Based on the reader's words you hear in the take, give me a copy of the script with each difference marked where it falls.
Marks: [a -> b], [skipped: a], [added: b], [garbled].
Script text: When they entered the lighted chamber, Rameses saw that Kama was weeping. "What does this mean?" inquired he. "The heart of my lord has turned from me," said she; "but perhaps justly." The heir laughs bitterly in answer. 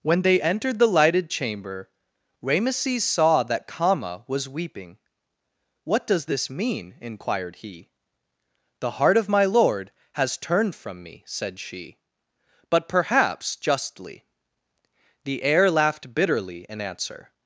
When they entered the lighted chamber, Rameses saw that Kama was weeping. "What does this mean?" inquired he. "The heart of my lord has turned from me," said she; "but perhaps justly." The heir [laughs -> laughed] bitterly in answer.